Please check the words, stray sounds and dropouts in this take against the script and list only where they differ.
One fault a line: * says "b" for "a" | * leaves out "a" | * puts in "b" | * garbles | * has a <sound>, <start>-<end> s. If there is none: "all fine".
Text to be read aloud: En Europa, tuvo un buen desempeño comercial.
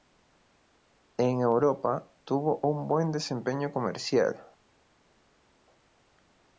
all fine